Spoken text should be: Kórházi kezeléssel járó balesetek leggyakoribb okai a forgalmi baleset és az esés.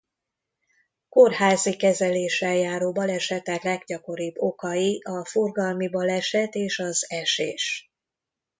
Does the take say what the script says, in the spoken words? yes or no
yes